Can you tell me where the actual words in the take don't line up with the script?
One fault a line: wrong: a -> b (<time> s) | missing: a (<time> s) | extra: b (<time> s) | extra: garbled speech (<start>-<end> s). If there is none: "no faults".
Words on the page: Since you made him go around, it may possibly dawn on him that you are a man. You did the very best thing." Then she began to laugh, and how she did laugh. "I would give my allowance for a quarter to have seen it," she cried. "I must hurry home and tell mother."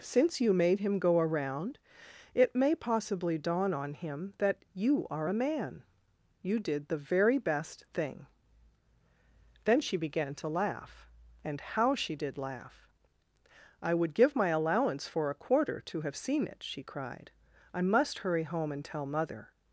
no faults